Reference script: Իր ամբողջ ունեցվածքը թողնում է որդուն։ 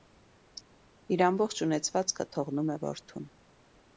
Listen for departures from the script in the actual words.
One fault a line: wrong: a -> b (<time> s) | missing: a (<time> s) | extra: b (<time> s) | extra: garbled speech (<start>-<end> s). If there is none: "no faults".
no faults